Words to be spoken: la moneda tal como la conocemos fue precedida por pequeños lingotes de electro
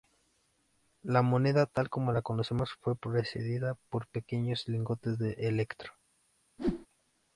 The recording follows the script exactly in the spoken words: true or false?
true